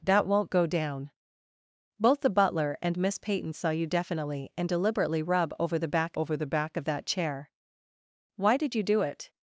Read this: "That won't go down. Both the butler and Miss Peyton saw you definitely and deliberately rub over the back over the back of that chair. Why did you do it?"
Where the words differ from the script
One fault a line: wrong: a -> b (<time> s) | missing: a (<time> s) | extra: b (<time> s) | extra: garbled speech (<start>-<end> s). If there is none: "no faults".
no faults